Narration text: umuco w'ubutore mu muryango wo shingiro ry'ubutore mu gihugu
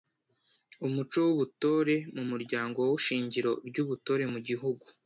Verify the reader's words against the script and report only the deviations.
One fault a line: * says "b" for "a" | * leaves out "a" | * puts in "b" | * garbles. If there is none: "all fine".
all fine